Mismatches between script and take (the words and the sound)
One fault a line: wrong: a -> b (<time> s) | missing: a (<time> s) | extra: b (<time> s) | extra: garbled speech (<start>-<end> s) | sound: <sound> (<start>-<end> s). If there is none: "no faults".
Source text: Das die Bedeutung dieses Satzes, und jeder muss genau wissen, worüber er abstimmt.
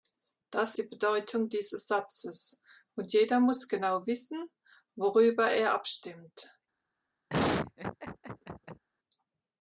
sound: laugh (7.3-8.8 s)